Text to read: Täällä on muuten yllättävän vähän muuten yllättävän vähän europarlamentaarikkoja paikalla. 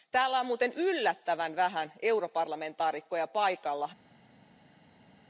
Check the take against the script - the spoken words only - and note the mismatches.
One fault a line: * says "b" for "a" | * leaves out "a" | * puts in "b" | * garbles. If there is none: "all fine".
* leaves out "muuten yllättävän vähän"